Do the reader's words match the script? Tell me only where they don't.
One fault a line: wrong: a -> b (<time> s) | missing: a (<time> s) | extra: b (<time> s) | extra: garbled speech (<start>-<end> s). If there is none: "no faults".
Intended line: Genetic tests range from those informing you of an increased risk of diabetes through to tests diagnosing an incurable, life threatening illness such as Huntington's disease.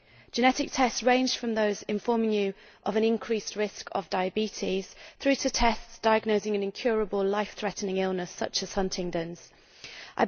no faults